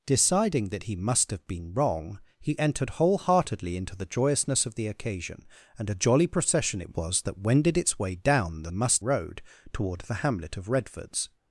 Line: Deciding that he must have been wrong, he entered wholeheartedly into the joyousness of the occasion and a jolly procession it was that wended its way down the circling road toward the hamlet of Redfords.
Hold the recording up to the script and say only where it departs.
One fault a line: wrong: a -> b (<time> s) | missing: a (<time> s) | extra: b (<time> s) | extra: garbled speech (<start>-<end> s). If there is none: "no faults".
wrong: circling -> must (8.7 s)